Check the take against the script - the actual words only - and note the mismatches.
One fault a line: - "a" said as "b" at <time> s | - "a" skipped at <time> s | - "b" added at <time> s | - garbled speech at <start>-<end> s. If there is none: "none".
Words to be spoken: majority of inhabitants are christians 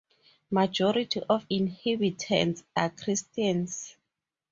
none